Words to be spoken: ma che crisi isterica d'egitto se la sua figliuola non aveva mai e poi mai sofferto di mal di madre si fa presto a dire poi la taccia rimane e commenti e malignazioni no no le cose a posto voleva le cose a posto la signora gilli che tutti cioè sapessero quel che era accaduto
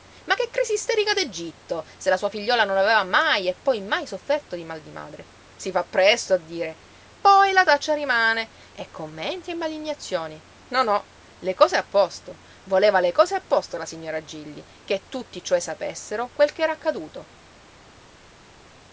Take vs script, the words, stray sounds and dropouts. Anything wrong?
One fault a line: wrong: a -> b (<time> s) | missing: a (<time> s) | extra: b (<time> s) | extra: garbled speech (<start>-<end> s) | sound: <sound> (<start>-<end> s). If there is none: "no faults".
no faults